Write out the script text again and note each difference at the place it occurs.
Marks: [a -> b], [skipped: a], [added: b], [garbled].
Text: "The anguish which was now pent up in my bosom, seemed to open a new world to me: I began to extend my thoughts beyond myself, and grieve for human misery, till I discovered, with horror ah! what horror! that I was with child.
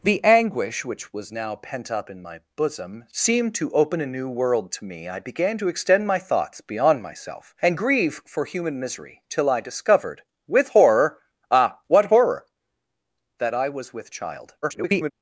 "The anguish which was now pent up in my bosom, seemed to open a new world to me: I began to extend my thoughts beyond myself, and grieve for human misery, till I discovered, with horror ah! what horror! that I was with child. [garbled]